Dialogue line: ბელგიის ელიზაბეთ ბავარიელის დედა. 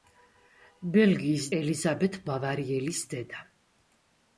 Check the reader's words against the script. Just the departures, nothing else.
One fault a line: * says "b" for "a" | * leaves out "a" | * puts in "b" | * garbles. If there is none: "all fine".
all fine